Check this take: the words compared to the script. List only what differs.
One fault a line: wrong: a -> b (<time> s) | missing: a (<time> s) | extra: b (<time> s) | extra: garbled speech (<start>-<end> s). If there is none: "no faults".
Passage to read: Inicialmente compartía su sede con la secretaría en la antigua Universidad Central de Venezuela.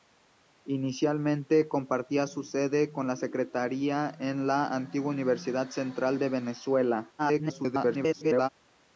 extra: garbled speech (7.2-8.5 s)